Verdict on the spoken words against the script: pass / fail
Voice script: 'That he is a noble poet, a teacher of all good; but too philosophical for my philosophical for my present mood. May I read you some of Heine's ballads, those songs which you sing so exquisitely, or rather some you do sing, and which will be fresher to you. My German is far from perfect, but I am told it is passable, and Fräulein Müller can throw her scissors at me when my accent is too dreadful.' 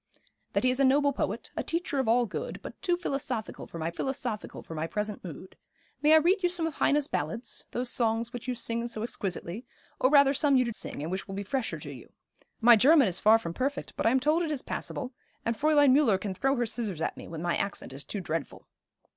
pass